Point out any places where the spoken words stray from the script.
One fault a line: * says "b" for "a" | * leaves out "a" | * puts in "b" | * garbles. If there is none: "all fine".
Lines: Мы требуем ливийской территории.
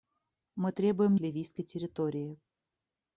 all fine